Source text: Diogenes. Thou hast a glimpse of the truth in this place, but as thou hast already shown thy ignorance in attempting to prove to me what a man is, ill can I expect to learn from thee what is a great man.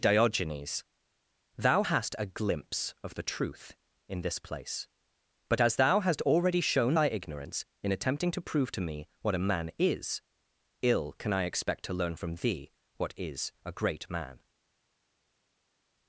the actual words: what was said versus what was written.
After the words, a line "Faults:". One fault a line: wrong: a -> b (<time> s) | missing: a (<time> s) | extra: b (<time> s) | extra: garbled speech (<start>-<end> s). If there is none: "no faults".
Diogenes. Thou hast a glimpse of the truth in this place, but as thou hast already shown thy ignorance in attempting to prove to me what a man is, ill can I expect to learn from thee what is a great man.
Faults:
no faults